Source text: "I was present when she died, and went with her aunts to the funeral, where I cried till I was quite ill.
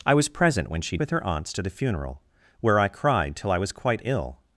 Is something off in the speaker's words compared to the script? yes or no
yes